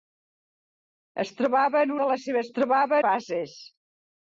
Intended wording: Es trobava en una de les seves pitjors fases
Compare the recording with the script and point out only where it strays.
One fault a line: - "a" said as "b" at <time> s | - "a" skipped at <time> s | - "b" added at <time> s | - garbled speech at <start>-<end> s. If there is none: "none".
- "una" skipped at 1.9 s
- "pitjors" said as "trobava" at 2.6 s